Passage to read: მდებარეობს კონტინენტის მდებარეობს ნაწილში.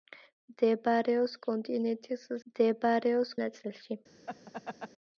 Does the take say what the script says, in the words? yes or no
yes